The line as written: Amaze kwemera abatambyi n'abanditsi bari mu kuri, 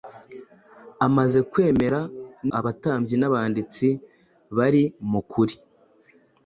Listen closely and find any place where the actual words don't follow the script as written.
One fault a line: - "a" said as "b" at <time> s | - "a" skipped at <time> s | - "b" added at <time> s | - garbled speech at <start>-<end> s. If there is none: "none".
none